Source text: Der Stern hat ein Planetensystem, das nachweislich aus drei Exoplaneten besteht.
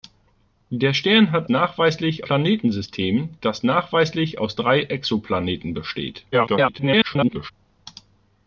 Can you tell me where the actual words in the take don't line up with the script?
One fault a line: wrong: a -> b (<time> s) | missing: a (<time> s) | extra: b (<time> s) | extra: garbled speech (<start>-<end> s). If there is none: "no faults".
wrong: ein -> nachweislich (1.5 s)
extra: garbled speech (6.3-7.5 s)